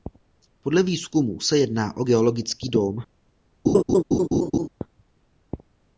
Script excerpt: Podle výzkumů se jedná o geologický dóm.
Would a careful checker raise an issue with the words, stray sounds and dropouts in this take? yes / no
yes